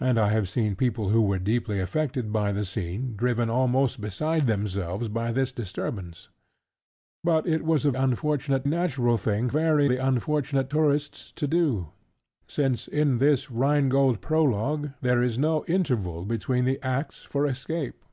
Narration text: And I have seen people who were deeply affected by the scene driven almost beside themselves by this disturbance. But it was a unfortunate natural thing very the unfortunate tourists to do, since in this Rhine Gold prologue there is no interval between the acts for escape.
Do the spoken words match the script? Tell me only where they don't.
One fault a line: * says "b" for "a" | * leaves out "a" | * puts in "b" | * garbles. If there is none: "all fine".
all fine